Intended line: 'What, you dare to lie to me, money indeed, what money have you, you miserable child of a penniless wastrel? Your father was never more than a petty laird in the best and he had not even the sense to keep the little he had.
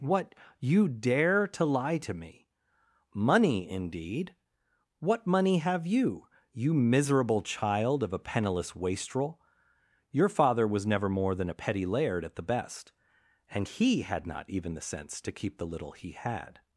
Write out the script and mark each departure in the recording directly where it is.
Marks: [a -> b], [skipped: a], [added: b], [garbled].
'What, you dare to lie to me, money indeed, what money have you, you miserable child of a penniless wastrel? Your father was never more than a petty laird [in -> at] the best and he had not even the sense to keep the little he had.